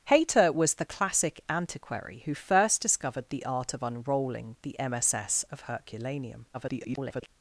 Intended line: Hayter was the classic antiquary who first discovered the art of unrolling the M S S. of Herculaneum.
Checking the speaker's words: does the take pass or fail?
fail